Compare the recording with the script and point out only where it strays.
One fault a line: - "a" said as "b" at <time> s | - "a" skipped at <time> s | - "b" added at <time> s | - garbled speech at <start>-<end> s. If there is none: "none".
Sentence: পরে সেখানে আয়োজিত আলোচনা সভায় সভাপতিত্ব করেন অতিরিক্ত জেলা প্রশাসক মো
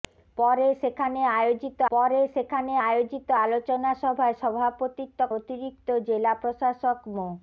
- "পরে সেখানে আয়োজিত" added at 1.9 s
- "করেন" skipped at 5.2 s